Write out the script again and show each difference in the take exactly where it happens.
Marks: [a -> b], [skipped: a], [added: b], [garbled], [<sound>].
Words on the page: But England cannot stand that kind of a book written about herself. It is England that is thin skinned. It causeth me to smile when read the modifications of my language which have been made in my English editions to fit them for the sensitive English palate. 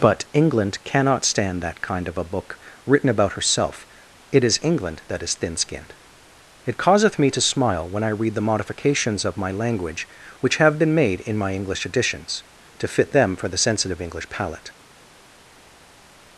But England cannot stand that kind of a book written about herself. It is England that is thin skinned. It causeth me to smile when [added: I] read the modifications of my language which have been made in my English editions to fit them for the sensitive English palate.